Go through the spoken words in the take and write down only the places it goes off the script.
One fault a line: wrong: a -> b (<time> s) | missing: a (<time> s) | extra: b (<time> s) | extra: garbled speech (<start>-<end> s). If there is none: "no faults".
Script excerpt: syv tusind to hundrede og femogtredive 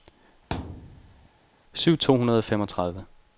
missing: tusind (2.0 s)